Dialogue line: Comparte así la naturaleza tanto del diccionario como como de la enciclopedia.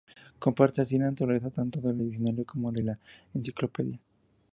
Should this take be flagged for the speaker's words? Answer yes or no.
yes